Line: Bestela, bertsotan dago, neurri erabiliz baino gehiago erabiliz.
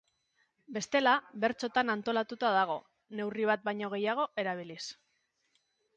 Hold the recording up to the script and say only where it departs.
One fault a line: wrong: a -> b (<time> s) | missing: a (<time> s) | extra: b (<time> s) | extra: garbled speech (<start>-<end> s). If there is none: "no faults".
extra: antolatuta (1.9 s)
wrong: erabiliz -> bat (3.5 s)